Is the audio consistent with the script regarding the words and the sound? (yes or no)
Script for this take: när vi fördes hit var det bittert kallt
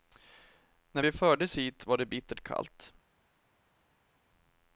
yes